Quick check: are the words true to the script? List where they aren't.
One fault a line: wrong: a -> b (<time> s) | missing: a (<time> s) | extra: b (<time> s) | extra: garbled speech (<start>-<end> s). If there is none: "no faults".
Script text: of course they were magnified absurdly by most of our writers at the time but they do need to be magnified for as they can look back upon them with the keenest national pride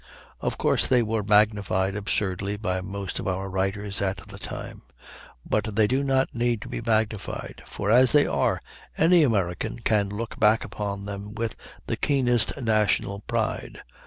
extra: not (6.0 s)
extra: are any american (8.3 s)